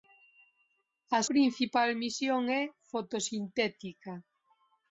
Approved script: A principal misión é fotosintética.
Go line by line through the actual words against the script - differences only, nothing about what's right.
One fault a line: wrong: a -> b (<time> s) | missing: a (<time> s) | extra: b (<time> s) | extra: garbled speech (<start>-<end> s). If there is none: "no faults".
no faults